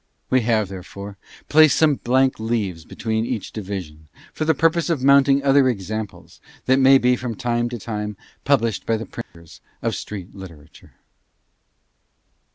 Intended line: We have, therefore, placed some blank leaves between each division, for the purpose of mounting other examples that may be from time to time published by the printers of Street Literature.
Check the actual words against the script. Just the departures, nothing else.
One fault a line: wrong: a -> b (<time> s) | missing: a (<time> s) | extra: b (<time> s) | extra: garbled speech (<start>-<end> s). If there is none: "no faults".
no faults